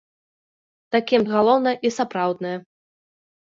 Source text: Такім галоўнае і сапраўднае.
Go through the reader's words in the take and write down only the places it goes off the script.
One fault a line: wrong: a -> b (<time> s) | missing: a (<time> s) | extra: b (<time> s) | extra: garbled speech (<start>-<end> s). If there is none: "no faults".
no faults